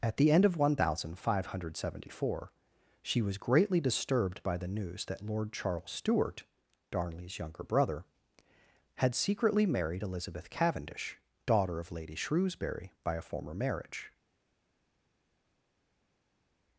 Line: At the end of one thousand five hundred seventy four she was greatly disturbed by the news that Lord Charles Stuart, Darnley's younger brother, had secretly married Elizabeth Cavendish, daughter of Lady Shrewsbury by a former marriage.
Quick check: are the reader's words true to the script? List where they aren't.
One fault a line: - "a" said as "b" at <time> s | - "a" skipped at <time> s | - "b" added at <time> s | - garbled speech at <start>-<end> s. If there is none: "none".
none